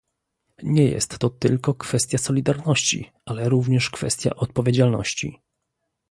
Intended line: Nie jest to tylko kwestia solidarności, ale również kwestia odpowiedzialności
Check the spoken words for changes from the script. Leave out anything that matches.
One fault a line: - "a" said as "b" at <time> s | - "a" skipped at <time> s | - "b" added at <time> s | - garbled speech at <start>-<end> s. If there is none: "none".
none